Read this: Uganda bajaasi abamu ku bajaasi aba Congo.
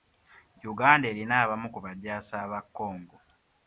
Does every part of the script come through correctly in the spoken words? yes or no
no